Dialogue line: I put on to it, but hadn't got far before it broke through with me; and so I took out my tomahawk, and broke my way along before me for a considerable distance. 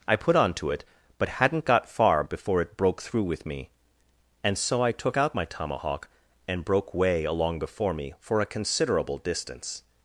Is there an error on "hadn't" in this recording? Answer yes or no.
no